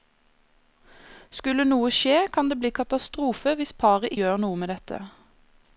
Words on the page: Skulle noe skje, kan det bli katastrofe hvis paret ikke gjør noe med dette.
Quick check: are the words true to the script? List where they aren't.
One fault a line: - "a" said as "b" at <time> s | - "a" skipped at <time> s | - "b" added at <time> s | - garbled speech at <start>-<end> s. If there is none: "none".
- "ikke" skipped at 4.1 s